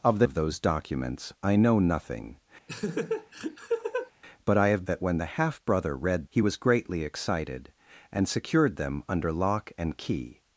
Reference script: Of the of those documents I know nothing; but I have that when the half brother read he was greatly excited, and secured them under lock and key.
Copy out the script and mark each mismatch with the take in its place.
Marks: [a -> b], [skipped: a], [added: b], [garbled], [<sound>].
Of the of those documents I know nothing; [laugh] but I have that when the half brother read he was greatly excited, and secured them under lock and key.